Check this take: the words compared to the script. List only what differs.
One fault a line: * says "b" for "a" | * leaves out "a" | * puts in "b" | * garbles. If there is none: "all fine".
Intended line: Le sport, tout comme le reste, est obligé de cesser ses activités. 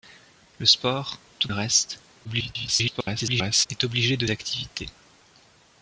* leaves out "comme"
* garbles
* leaves out "cesser ses"